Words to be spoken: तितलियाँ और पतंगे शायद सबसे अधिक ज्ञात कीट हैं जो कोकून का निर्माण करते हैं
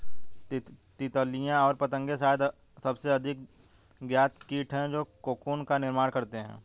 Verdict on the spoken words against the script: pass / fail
pass